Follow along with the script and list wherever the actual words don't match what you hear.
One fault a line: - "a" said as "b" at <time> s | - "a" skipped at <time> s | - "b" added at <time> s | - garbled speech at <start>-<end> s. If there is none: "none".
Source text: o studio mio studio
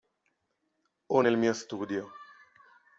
- "studio" said as "nel" at 1.2 s